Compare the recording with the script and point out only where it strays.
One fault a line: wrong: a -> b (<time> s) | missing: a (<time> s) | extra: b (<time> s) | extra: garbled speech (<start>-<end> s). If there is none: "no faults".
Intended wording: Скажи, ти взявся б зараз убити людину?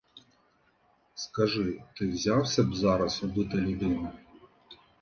no faults